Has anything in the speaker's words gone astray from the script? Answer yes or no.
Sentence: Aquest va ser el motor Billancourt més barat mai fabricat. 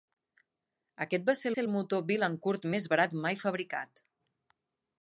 yes